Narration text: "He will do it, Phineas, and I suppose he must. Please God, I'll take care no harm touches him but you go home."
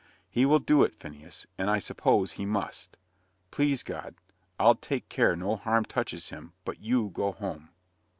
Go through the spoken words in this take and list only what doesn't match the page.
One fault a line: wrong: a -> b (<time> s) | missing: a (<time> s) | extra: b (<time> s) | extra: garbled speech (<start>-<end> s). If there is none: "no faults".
no faults